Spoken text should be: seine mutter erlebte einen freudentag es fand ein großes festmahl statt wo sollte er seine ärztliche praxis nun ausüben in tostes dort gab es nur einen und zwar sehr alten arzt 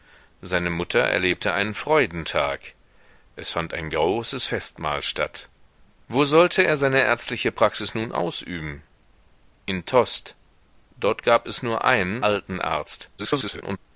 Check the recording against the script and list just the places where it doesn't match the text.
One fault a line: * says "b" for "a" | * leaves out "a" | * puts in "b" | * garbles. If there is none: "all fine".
* leaves out "und zwar sehr"
* garbles